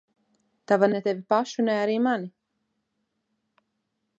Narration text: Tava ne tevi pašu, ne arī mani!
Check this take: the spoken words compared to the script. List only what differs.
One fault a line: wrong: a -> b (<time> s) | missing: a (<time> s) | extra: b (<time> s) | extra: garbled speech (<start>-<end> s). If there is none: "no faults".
no faults